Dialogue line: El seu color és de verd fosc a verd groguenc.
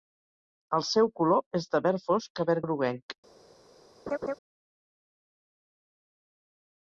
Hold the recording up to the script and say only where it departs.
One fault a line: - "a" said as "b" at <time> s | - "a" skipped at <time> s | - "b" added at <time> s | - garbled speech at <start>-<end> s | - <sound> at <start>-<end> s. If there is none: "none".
- laugh at 4.1-4.3 s